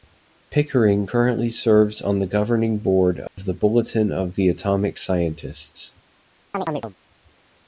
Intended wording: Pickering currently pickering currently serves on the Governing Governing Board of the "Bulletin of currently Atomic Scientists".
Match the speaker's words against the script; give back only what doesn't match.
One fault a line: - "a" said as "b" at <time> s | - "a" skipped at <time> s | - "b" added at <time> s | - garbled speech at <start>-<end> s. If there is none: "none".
- "pickering currently" skipped at 1.5 s
- "Governing" skipped at 2.8 s
- "currently" said as "the" at 4.3 s